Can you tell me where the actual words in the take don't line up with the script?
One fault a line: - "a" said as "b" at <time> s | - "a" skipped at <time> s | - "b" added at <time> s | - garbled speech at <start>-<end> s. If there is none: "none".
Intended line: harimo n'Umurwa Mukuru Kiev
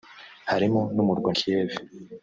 - "Mukuru" skipped at 1.3 s